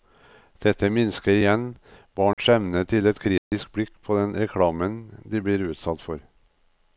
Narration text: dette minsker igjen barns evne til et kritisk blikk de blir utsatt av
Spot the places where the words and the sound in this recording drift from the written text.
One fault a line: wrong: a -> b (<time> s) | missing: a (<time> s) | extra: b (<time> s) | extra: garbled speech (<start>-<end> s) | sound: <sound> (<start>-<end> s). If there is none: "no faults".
sound: dropout (2.3-2.4 s)
sound: dropout (3.4-3.5 s)
extra: på den reklamen (4.1 s)
wrong: av -> for (6.1 s)